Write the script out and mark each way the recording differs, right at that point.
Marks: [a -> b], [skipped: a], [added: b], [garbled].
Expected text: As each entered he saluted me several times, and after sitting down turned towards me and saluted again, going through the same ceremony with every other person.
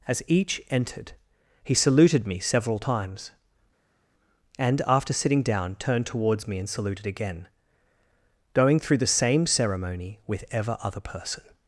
As each entered he saluted me several times, and after sitting down turned towards me and saluted again, going through the same ceremony with [every -> ever] other person.